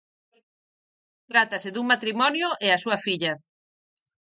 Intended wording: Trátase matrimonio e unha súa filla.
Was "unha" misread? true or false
true